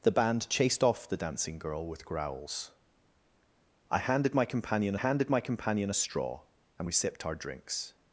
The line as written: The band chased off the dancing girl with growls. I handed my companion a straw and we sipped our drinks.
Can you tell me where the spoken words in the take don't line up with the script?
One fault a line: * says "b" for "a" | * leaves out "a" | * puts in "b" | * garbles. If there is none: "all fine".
* puts in "handed my companion"